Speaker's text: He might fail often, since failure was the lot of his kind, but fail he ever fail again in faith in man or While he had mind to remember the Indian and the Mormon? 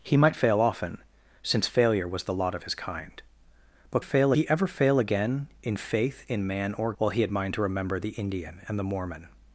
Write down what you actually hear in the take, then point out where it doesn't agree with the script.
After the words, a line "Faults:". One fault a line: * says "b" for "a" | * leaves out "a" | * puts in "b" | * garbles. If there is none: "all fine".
He might fail often, since failure was the lot of his kind, but fail he ever fail again in faith in man or While he had mind to remember the Indian and the Mormon?
Faults:
all fine